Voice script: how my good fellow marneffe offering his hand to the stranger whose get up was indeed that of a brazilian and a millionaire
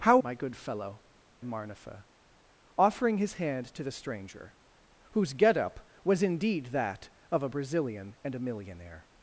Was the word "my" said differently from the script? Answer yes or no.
no